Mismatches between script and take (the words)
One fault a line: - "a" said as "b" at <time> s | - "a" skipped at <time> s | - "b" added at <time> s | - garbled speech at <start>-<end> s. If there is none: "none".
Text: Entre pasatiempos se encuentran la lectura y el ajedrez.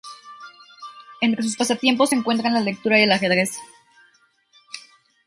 - "sus" added at 1.4 s